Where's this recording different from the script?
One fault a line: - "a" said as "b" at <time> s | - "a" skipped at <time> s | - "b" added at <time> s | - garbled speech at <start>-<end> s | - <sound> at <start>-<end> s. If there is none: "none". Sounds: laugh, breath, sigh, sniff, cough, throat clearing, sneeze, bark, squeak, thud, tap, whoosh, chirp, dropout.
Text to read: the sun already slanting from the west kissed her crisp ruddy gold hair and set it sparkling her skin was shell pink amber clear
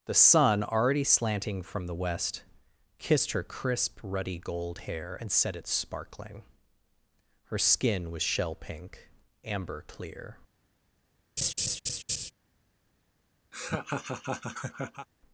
- laugh at 11.4-12.3 s
- laugh at 13.5-15.1 s